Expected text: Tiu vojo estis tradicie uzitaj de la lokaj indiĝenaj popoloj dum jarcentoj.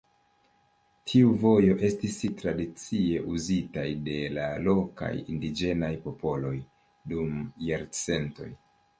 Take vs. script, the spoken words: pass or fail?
pass